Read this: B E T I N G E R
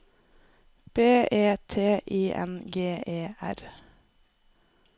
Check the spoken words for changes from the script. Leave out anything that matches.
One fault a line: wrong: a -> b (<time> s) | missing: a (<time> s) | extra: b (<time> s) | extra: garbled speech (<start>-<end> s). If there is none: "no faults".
no faults